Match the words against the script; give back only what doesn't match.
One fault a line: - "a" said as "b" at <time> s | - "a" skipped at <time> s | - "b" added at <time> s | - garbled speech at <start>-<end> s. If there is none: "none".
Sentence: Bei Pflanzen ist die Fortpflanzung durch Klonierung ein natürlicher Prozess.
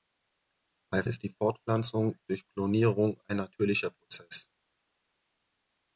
- "Pflanzen" skipped at 1.0 s